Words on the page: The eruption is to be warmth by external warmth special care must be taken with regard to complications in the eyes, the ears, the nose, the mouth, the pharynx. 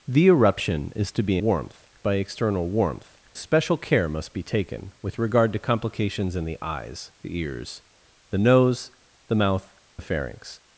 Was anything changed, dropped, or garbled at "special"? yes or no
no